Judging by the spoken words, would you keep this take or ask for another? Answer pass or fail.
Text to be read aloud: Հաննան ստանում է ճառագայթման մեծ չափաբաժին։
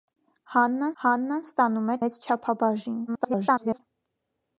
fail